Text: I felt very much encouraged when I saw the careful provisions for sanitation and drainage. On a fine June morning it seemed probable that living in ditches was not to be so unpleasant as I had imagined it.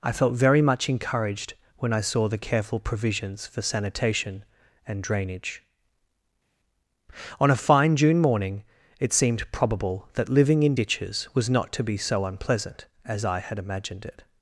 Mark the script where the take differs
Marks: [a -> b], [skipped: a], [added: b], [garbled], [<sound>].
I felt very much encouraged when I saw the careful provisions for sanitation and drainage. On a fine June morning it seemed probable that living in ditches was not to be so unpleasant as I had imagined it.